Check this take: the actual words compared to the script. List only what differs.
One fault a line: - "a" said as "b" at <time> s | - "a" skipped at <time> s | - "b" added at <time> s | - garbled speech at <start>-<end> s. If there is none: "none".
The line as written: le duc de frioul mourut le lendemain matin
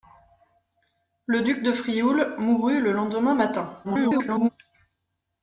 - garbled speech at 3.8-4.5 s